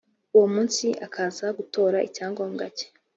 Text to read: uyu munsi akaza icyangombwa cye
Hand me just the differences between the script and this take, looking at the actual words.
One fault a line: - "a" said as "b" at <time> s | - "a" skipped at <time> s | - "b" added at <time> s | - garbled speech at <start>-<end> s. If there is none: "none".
- "uyu" said as "uwo" at 0.3 s
- "gutora" added at 1.6 s